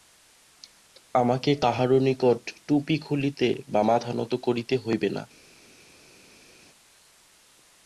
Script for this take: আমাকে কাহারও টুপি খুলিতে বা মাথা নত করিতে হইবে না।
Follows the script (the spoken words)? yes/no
no